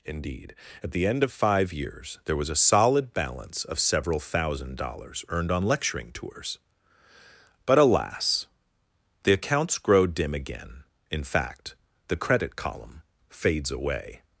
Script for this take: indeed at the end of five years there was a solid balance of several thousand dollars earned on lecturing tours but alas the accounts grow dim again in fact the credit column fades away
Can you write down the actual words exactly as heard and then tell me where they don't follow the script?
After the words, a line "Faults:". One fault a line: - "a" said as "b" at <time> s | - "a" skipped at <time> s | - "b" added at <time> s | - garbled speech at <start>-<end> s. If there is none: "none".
indeed at the end of five years there was a solid balance of several thousand dollars earned on lecturing tours but alas the accounts grow dim again in fact the credit column fades away
Faults:
none